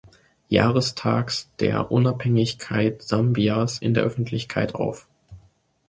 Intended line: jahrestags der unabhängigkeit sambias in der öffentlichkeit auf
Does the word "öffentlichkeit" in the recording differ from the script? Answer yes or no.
no